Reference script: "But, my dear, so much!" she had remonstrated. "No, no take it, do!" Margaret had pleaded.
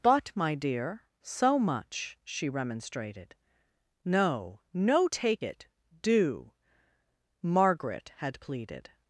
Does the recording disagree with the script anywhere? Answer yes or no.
yes